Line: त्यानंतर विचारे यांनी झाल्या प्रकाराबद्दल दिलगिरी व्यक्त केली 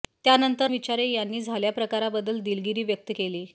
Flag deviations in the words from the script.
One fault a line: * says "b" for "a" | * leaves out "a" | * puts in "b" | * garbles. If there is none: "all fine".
all fine